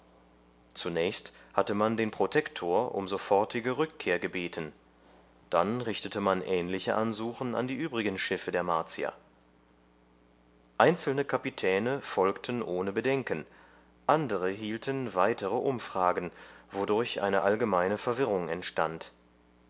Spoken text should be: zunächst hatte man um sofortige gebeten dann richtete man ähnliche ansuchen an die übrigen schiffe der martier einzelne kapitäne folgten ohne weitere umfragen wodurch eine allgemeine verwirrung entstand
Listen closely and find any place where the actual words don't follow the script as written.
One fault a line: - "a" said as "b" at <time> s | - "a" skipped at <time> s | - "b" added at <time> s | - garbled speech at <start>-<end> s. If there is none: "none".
- "den protektor" added at 1.9 s
- "rückkehr" added at 3.8 s
- "bedenken andere hielten" added at 12.9 s